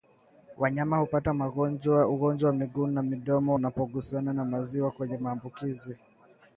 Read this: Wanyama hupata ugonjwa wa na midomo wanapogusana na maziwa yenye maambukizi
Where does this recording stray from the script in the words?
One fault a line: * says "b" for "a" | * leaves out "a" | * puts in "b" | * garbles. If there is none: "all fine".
* puts in "miguu"